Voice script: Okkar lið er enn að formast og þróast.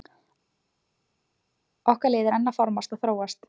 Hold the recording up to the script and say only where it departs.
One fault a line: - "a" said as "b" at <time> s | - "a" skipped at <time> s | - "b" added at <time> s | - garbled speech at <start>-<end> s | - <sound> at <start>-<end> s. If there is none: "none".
none